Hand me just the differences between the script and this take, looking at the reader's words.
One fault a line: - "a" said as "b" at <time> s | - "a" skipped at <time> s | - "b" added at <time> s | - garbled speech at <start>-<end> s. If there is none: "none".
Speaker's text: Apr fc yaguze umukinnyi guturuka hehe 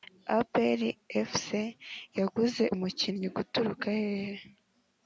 none